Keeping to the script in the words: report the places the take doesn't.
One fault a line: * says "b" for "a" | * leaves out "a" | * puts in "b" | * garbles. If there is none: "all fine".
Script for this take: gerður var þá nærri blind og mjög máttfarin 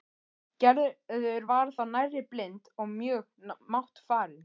all fine